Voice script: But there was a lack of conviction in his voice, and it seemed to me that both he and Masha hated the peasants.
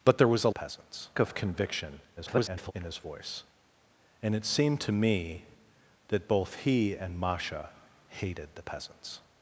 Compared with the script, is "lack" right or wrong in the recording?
wrong